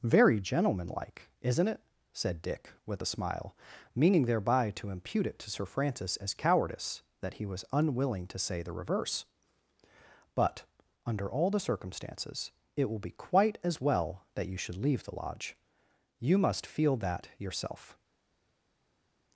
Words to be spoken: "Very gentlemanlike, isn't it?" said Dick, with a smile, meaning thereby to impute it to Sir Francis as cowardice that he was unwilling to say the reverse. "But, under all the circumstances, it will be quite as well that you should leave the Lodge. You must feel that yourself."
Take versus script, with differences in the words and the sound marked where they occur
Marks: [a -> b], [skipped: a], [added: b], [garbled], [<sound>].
"Very gentlemanlike, isn't it?" said Dick, with a smile, meaning thereby to impute it to Sir Francis as cowardice that he was unwilling to say the reverse. "But, under all the circumstances, it will be quite as well that you should leave the Lodge. You must feel that yourself."